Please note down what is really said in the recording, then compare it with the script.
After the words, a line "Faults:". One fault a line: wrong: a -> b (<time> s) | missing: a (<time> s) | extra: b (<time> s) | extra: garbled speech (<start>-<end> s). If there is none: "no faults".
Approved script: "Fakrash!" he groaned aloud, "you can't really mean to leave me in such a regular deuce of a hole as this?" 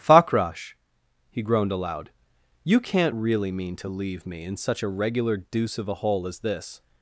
"Fakrash!" he groaned aloud, "you can't really mean to leave me in such a regular deuce of a hole as this?"
Faults:
no faults